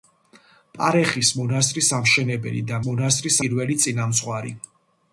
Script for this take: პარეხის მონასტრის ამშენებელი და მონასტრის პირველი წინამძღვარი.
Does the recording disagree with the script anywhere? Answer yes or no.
no